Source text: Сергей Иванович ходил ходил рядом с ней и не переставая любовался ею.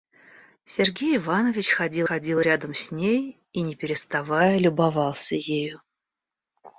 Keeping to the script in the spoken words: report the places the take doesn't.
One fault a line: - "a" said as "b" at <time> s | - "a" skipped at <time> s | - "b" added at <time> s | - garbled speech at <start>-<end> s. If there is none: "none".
none